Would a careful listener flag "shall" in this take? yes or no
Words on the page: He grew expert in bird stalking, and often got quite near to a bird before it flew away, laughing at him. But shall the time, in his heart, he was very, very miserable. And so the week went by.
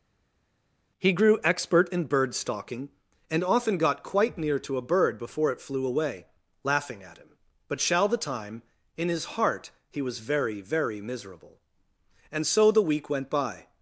no